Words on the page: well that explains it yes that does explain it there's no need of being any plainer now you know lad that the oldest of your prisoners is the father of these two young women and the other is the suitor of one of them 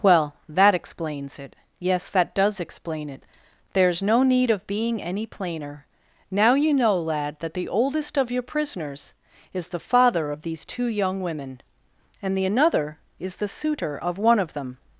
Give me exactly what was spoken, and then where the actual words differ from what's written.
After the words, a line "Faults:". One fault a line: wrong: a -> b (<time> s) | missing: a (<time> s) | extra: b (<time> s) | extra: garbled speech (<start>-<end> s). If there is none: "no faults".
well that explains it yes that does explain it there's no need of being any plainer now you know lad that the oldest of your prisoners is the father of these two young women and the another is the suitor of one of them
Faults:
wrong: other -> another (12.5 s)